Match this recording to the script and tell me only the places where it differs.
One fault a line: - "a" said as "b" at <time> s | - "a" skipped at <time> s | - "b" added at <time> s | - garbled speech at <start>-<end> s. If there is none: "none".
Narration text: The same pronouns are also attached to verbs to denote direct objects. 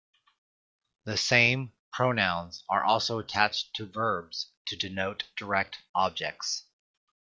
none